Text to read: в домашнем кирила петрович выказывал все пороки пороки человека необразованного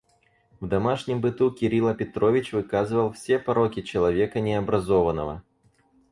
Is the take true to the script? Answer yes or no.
no